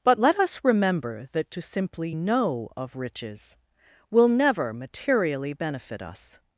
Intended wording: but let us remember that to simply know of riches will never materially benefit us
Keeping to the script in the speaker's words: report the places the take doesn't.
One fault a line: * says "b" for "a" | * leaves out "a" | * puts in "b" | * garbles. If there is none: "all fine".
all fine